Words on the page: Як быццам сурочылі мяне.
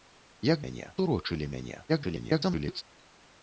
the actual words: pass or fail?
fail